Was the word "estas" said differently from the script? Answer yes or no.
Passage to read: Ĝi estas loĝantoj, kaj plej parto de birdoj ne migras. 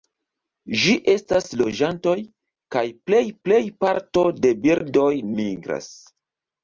no